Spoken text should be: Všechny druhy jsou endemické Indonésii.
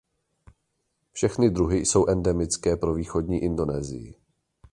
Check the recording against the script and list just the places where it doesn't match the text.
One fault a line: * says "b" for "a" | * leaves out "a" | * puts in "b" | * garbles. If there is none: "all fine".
* puts in "pro východní"